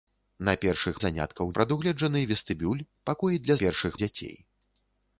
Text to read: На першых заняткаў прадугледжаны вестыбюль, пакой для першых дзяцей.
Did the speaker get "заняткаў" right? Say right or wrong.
right